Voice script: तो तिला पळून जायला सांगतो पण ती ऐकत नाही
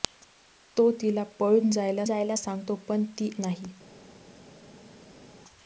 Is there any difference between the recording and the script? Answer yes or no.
yes